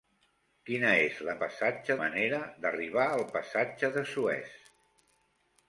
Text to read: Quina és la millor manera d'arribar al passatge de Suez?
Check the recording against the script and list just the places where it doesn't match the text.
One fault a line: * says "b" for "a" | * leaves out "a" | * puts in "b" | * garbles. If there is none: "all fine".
* says "passatge" for "millor"